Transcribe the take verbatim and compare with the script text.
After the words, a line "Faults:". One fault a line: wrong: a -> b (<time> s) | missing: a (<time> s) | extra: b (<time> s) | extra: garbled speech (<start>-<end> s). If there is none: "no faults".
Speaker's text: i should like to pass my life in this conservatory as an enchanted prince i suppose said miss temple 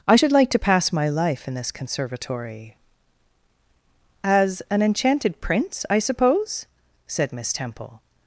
i should like to pass my life in this conservatory as an enchanted prince i suppose said miss temple
Faults:
no faults